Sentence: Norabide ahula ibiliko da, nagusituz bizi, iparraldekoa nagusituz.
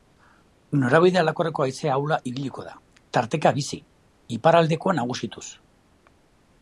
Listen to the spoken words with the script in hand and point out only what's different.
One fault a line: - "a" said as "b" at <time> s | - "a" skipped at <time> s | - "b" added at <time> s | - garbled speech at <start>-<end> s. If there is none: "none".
- "aldakorreko haize" added at 1.2 s
- "nagusituz" said as "tarteka" at 3.2 s